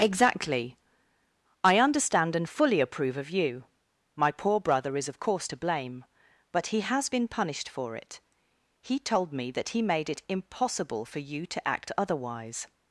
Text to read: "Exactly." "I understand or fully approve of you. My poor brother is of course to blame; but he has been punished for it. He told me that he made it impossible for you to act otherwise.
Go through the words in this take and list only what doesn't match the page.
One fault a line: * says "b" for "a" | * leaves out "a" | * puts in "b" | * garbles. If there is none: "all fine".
* says "and" for "or"